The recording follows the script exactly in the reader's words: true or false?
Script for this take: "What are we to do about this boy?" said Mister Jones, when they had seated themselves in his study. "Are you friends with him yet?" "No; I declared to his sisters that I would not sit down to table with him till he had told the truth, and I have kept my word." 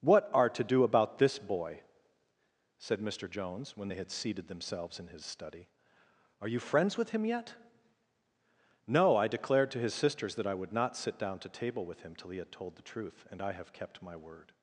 false